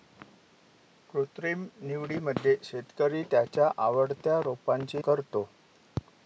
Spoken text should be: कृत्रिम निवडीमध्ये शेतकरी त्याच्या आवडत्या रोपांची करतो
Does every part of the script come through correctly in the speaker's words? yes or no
yes